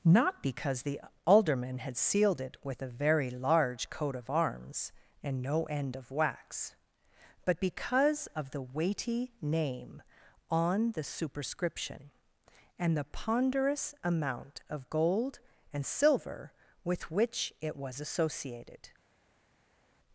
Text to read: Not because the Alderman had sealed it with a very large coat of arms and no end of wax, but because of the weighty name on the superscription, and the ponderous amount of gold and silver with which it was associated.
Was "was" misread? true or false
false